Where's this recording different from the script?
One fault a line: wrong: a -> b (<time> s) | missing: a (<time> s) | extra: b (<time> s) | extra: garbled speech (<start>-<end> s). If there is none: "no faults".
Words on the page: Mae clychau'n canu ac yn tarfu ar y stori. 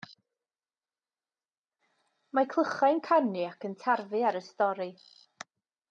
no faults